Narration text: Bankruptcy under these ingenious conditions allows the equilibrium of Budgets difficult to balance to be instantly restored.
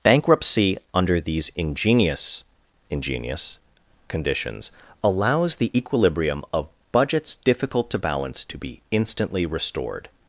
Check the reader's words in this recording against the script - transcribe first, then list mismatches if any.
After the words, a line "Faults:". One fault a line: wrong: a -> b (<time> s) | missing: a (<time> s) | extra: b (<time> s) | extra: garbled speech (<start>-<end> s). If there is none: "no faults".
Bankruptcy under these ingenious ingenious conditions allows the equilibrium of Budgets difficult to balance to be instantly restored.
Faults:
extra: ingenious (2.9 s)